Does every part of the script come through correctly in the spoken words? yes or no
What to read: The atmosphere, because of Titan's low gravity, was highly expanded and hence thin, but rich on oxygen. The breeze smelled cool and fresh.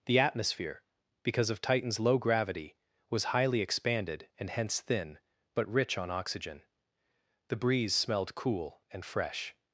yes